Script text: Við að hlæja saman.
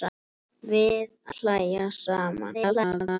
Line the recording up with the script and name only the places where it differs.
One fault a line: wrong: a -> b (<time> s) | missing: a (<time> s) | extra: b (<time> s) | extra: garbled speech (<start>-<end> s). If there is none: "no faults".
missing: að (1.1 s)
extra: garbled speech (2.5-3.2 s)